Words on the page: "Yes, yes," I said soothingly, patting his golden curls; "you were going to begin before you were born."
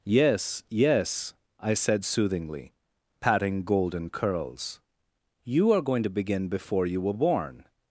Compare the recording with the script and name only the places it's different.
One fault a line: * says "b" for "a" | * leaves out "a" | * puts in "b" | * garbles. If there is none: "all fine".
* leaves out "his"
* says "are" for "were"